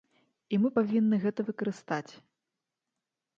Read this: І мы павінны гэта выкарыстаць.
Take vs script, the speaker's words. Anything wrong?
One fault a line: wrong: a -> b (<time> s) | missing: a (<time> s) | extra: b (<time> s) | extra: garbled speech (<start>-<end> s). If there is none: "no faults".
no faults